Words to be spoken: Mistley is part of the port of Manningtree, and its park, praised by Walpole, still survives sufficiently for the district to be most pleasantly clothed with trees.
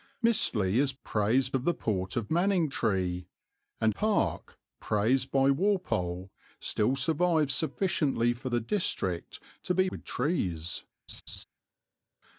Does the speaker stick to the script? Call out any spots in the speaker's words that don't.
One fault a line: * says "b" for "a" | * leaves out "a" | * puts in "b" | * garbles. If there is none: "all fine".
* says "praised" for "part"
* leaves out "its"
* leaves out "most pleasantly clothed"